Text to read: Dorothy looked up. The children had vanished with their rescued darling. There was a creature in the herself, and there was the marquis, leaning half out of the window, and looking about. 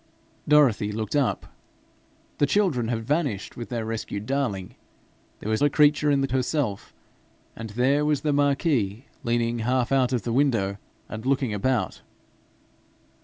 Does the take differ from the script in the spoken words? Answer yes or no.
no